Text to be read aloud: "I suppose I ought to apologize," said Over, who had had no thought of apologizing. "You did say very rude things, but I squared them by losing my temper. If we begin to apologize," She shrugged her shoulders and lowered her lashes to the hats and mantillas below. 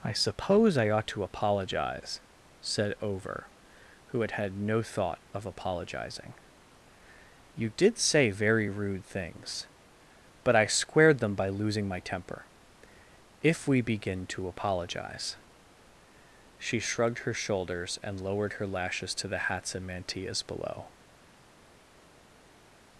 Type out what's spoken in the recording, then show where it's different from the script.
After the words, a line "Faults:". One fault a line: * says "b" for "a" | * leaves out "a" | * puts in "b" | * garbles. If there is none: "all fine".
"I suppose I ought to apologize," said Over, who had had no thought of apologizing. "You did say very rude things, but I squared them by losing my temper. If we begin to apologize," She shrugged her shoulders and lowered her lashes to the hats and mantillas below.
Faults:
all fine